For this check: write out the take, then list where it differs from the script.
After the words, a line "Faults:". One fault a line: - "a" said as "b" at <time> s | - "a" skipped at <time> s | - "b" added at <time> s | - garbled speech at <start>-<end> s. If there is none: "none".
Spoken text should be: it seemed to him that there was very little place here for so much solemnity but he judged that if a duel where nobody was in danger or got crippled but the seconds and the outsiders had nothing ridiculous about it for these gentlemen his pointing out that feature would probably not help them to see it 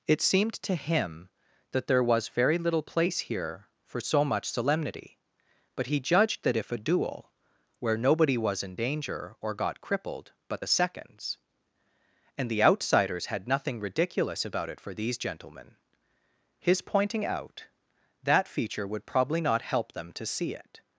it seemed to him that there was very little place here for so much solemnity but he judged that if a duel where nobody was in danger or got crippled but the seconds and the outsiders had nothing ridiculous about it for these gentlemen his pointing out that feature would probably not help them to see it
Faults:
none